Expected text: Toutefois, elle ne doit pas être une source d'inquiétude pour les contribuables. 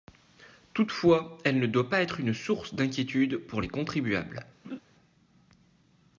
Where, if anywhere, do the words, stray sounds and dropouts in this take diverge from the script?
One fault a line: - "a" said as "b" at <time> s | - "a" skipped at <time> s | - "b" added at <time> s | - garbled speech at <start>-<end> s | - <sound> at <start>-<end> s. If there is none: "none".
- laugh at 4.6-4.8 s